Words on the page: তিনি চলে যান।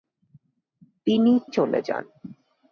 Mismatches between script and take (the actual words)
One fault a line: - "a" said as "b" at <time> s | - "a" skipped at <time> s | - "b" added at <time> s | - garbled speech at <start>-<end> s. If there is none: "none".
none